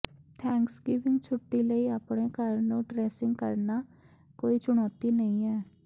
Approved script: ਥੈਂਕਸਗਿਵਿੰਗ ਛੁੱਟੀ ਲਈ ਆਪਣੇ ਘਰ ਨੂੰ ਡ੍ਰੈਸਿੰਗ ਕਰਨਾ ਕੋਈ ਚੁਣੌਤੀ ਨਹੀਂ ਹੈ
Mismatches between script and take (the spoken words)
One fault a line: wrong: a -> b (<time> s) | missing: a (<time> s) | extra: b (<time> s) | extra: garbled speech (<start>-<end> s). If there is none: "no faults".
no faults